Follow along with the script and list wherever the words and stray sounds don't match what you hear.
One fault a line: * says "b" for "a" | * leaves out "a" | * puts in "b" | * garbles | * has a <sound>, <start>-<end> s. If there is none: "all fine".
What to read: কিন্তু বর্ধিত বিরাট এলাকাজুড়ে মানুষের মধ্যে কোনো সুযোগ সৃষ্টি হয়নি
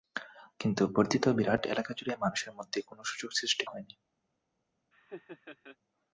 * has a laugh, 4.9-5.8 s